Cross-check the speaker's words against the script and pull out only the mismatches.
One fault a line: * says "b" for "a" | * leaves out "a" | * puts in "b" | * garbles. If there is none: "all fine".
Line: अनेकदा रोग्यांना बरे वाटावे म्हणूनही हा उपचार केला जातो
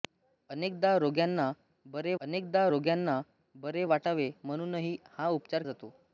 * puts in "अनेकदा रोग्यांना बरे"
* leaves out "केला"